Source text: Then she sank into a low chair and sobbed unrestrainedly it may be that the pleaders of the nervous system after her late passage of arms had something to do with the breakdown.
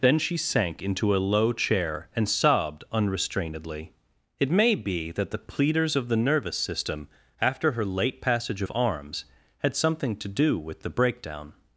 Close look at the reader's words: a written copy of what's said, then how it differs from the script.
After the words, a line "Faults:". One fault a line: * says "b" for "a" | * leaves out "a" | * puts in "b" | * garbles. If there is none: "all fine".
Then she sank into a low chair and sobbed unrestrainedly it may be that the pleaders of the nervous system after her late passage of arms had something to do with the breakdown.
Faults:
all fine